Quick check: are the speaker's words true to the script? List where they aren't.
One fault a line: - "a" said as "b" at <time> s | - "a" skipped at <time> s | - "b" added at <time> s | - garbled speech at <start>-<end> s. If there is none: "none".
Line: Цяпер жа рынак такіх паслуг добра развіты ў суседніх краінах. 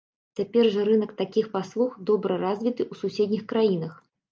none